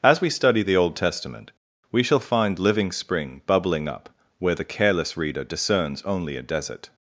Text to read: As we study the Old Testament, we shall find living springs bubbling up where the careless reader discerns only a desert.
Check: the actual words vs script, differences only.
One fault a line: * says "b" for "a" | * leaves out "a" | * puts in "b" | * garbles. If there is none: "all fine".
* says "spring" for "springs"